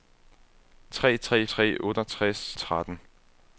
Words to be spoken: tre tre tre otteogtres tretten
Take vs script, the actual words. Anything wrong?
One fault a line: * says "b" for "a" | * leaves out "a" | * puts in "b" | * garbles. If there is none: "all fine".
all fine